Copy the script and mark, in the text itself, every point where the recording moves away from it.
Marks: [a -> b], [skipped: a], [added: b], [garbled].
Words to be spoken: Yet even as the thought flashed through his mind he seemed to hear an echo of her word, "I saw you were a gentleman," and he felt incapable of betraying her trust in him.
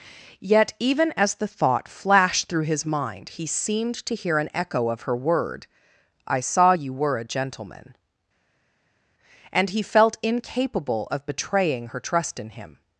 Yet even as the thought flashed through his mind he seemed to hear an echo of her word, "I saw you were a gentleman," and he felt incapable of betraying her trust in him.